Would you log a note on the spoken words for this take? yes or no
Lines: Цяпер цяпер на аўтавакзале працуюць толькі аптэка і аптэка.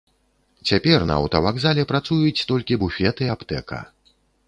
yes